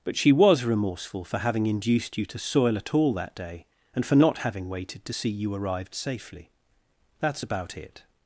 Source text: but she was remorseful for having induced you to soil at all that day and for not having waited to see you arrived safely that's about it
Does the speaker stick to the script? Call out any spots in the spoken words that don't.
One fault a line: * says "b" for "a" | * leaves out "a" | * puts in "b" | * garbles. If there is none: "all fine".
all fine